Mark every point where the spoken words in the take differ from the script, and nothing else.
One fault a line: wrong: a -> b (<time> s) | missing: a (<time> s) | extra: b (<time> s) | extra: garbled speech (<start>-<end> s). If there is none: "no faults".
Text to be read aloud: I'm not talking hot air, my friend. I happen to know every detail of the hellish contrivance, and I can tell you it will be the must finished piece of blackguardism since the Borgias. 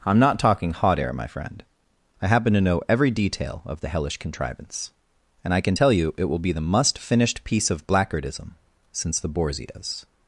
no faults